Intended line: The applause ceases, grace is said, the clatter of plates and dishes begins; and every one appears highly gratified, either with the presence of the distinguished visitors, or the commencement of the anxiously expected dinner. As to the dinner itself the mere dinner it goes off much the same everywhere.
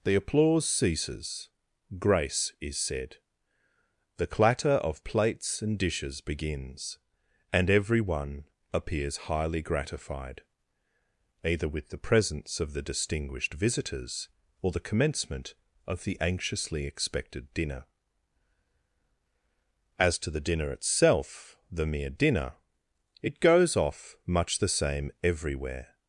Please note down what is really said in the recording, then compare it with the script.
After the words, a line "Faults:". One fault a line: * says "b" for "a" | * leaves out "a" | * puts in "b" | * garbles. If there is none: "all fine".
The applause ceases, grace is said, the clatter of plates and dishes begins; and every one appears highly gratified, either with the presence of the distinguished visitors, or the commencement of the anxiously expected dinner. As to the dinner itself the mere dinner it goes off much the same everywhere.
Faults:
all fine